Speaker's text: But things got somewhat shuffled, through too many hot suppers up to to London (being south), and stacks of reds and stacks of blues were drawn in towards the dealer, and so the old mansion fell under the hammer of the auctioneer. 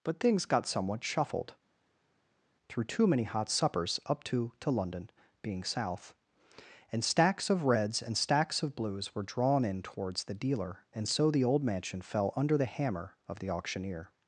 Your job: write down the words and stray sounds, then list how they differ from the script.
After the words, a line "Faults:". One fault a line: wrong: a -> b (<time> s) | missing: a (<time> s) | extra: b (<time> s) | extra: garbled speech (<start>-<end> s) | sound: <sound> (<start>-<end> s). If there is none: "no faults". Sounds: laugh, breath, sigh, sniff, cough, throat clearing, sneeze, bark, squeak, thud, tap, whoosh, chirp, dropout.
But things got somewhat shuffled, through too many hot suppers up to to London (being south), and stacks of reds and stacks of blues were drawn in towards the dealer, and so the old mansion fell under the hammer of the auctioneer.
Faults:
no faults